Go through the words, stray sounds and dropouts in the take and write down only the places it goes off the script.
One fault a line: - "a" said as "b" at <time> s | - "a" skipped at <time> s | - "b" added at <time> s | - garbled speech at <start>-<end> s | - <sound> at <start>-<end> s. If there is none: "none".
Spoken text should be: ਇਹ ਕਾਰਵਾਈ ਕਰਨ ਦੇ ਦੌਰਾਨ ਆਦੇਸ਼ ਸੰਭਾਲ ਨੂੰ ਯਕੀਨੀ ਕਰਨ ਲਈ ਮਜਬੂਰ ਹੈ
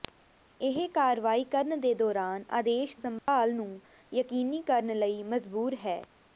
- dropout at 3.2-3.3 s